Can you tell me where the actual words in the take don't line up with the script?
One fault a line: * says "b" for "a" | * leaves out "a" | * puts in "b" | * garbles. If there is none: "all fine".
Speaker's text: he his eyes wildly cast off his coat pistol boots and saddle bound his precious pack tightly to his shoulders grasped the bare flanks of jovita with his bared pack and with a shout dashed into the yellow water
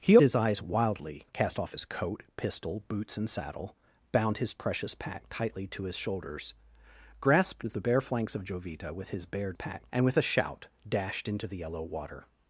all fine